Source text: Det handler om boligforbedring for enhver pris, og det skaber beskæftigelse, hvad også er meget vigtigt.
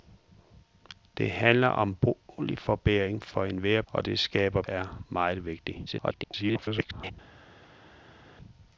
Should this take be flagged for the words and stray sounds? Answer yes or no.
yes